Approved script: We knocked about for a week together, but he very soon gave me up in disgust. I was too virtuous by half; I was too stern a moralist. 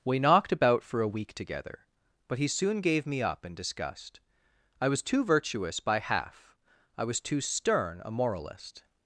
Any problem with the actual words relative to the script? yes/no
yes